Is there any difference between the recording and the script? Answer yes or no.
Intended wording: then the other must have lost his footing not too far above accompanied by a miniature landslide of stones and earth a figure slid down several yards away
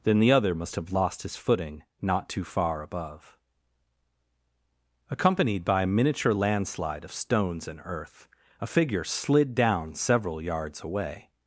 no